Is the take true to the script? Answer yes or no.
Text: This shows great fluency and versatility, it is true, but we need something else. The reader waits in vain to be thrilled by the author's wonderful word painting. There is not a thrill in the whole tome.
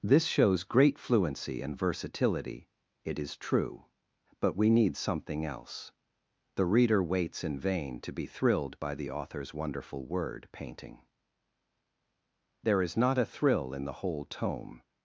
yes